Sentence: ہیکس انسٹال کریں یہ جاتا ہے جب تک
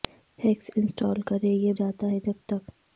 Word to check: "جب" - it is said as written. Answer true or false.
true